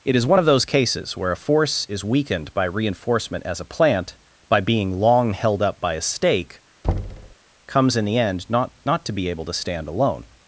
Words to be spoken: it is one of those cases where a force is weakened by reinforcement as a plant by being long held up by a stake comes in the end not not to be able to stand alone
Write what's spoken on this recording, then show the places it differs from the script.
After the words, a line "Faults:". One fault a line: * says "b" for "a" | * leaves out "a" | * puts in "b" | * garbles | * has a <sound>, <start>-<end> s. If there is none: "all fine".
it is one of those cases where a force is weakened by reinforcement as a plant by being long held up by a stake comes in the end not not to be able to stand alone
Faults:
* has a thud, 6.8-7.4 s